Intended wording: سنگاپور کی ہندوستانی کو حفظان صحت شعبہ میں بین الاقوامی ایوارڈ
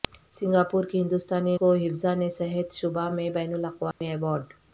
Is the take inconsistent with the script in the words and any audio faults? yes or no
yes